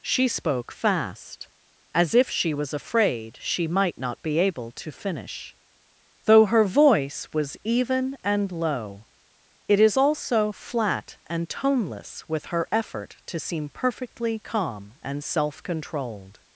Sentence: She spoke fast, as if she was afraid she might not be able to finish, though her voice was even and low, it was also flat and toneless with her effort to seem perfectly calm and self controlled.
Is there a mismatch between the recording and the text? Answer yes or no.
yes